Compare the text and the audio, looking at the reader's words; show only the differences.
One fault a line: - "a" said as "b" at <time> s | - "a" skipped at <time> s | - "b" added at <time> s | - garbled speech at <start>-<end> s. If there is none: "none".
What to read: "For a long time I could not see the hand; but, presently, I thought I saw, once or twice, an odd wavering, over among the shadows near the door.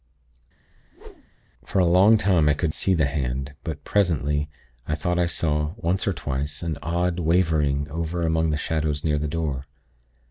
- "not" skipped at 2.7 s